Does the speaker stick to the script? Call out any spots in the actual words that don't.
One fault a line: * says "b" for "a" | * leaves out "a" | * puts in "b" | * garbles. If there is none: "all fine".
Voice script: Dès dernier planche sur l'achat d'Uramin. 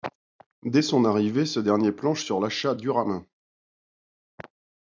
* puts in "son arrivée ce"